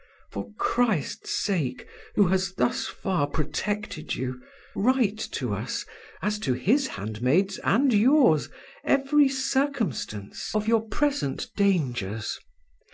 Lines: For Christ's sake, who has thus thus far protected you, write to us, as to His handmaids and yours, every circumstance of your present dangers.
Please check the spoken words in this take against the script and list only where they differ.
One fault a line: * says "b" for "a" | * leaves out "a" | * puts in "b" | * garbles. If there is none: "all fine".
* leaves out "thus"